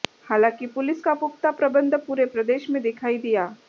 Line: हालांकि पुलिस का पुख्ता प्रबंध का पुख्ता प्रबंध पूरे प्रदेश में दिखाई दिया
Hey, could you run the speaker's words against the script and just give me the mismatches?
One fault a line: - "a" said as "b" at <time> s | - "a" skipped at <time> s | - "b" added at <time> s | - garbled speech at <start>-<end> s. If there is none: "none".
- "का पुख्ता प्रबंध" skipped at 2.0 s